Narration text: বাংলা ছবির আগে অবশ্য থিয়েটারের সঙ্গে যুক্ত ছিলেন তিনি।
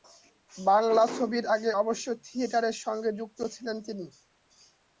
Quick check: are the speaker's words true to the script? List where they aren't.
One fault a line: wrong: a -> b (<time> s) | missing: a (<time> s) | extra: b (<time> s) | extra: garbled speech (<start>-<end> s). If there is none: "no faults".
no faults